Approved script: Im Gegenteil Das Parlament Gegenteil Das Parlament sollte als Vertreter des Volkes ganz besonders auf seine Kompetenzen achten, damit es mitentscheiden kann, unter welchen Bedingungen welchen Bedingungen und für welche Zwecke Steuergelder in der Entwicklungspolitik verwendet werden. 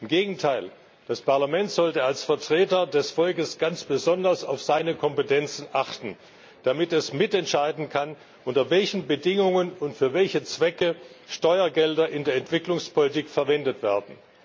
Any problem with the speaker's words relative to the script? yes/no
yes